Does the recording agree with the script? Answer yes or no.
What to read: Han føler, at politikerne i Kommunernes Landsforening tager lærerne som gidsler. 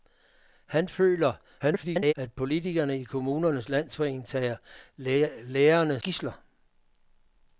no